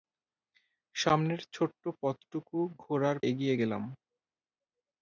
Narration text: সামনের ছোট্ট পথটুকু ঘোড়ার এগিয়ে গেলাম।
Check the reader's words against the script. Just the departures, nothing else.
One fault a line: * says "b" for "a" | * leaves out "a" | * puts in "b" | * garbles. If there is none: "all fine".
all fine